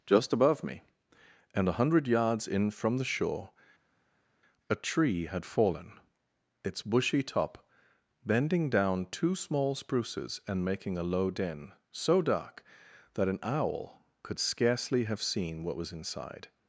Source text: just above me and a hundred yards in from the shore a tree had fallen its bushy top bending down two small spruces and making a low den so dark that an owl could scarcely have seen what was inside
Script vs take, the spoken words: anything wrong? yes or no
no